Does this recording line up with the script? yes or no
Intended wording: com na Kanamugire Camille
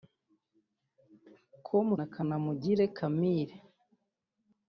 yes